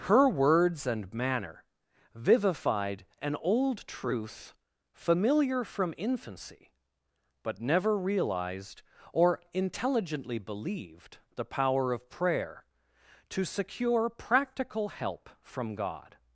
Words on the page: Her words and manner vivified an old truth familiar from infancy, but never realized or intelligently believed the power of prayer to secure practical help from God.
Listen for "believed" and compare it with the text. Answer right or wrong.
right